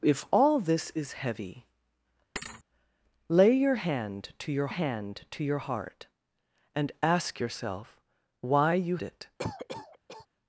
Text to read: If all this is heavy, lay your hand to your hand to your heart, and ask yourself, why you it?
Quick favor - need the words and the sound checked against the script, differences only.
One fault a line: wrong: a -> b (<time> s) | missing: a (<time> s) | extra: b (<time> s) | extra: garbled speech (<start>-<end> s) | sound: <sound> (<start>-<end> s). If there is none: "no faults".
sound: thud (2.4-2.6 s)
sound: cough (9.4-10.3 s)